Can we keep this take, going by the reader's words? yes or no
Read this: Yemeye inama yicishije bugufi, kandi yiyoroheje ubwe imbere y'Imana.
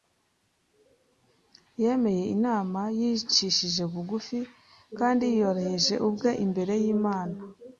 yes